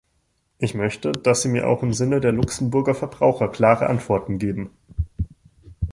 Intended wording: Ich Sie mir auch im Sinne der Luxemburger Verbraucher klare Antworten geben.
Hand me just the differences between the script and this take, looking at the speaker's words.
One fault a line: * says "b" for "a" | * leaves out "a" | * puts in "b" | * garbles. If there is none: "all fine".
* puts in "möchte dass"